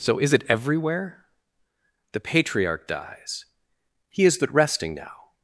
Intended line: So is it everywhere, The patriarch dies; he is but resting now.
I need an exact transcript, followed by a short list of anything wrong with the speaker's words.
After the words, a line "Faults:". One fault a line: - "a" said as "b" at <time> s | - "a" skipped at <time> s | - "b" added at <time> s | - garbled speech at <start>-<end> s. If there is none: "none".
So is it everywhere, The patriarch dies; he is but resting now.
Faults:
none